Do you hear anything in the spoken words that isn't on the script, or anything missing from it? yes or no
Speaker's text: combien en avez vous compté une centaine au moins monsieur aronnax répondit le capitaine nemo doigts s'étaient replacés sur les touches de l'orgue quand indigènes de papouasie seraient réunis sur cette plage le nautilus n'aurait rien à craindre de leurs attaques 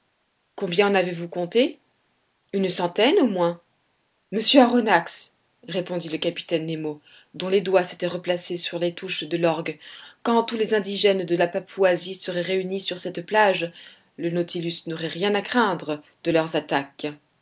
yes